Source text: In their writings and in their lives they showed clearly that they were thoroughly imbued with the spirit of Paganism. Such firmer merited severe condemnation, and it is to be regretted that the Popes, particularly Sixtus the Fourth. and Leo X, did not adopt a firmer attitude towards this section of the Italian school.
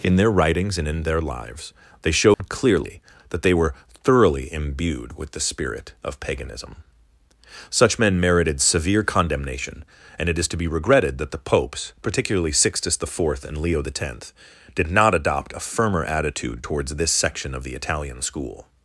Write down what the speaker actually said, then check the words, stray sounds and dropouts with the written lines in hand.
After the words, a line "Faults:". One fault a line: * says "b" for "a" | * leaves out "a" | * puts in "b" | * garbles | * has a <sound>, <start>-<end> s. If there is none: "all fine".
In their writings and in their lives they showed clearly that they were thoroughly imbued with the spirit of Paganism. Such men merited severe condemnation, and it is to be regretted that the Popes, particularly Sixtus the Fourth. and Leo X, did not adopt a firmer attitude towards this section of the Italian school.
Faults:
* has a dropout, 2.3-2.4 s
* says "men" for "firmer"